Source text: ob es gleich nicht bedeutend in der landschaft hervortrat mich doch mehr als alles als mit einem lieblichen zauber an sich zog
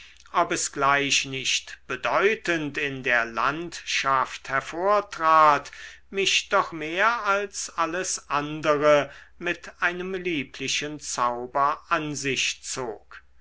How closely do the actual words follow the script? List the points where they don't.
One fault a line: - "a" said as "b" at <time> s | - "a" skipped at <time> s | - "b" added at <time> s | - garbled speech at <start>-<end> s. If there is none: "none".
- "als" said as "andere" at 8.3 s